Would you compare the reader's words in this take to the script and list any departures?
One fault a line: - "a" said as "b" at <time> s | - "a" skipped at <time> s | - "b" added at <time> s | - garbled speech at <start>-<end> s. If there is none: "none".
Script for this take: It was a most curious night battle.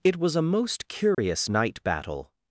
none